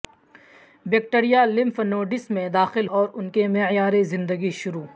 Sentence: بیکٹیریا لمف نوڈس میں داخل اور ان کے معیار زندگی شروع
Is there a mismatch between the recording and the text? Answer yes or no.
no